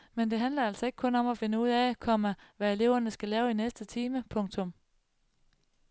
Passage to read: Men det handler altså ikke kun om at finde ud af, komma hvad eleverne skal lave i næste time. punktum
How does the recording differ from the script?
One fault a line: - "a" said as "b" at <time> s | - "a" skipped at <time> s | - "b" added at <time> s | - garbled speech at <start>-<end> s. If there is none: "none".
none